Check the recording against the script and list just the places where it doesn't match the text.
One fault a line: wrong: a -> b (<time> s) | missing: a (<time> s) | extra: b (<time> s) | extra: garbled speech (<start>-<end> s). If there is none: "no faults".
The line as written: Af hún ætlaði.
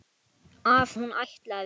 no faults